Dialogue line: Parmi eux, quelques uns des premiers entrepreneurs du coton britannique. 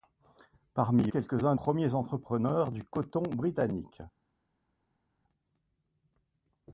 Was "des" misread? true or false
true